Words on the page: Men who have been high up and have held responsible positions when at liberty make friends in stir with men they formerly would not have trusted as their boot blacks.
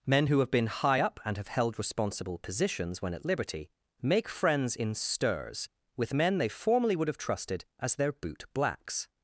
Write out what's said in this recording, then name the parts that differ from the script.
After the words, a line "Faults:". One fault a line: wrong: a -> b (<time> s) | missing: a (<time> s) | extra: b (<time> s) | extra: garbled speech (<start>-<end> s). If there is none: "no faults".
Men who have been high up and have held responsible positions when at liberty make friends in stirs with men they formerly would have trusted as their boot blacks.
Faults:
wrong: stir -> stirs (4.9 s)
missing: not (7.1 s)